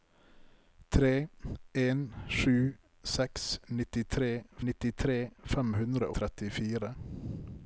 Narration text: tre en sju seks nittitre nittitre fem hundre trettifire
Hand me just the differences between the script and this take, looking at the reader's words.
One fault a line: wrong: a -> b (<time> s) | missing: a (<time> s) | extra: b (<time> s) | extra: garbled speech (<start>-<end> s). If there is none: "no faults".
no faults